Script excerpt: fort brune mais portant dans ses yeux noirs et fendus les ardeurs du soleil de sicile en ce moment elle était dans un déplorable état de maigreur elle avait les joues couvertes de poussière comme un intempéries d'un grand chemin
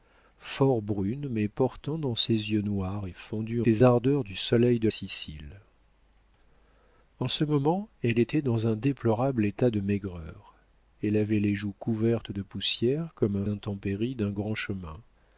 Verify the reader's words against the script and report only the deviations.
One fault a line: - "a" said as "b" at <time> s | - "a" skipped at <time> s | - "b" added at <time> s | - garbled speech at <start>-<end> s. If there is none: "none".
none